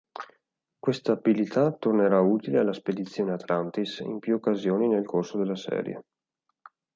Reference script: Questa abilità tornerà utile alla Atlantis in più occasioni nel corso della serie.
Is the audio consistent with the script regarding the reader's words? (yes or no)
no